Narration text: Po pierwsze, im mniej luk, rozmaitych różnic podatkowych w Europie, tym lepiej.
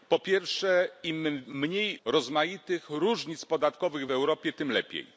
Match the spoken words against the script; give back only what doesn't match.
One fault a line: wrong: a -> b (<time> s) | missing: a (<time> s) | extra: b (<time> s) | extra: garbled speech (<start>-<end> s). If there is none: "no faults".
missing: luk (2.0 s)